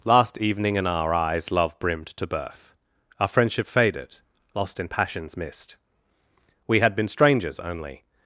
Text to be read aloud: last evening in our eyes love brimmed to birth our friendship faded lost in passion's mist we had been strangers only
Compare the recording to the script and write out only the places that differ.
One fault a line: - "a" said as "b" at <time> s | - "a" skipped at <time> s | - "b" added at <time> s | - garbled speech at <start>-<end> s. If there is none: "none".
none